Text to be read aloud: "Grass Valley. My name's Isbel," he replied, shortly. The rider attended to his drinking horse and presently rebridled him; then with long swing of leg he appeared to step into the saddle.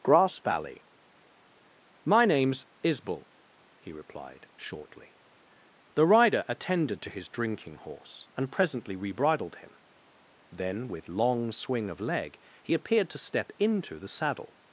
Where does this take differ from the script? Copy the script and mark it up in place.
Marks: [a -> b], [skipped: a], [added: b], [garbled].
"Grass Valley. My name's Isbel," he replied, shortly. The rider attended to his drinking horse and presently rebridled him; then with long swing of leg he appeared to step into the saddle.